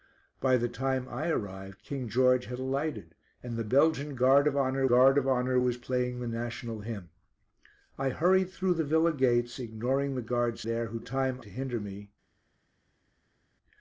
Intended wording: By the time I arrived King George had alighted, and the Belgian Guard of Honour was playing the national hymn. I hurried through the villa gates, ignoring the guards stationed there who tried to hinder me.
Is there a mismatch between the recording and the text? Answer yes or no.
yes